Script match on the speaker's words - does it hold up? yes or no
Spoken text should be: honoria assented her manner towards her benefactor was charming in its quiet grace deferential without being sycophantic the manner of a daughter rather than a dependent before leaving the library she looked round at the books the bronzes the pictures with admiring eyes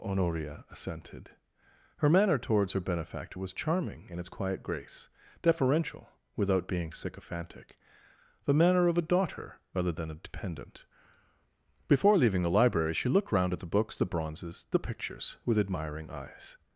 yes